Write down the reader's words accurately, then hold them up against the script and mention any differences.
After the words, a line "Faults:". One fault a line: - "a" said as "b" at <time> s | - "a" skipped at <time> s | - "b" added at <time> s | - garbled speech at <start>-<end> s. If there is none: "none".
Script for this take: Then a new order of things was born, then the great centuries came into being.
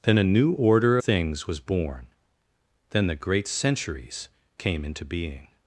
Then a new order things was born, then the great centuries came into being.
Faults:
- "of" skipped at 1.0 s